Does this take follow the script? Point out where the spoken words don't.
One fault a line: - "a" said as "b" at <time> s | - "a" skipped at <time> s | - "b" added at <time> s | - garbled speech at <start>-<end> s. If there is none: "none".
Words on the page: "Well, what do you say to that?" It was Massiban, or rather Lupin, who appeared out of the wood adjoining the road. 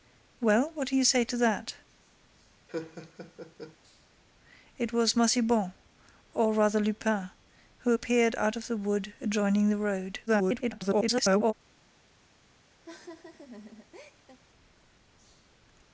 - garbled speech at 10.3-11.5 s